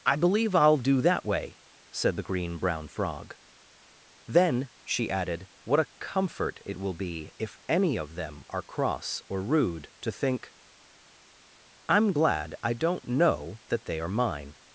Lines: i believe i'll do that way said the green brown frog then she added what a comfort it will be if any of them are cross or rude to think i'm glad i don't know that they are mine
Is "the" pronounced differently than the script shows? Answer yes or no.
no